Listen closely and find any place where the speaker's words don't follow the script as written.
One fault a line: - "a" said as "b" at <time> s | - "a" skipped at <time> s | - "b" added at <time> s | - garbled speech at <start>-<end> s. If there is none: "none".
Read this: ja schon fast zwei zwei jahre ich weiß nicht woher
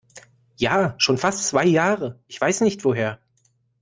- "zwei" skipped at 1.7 s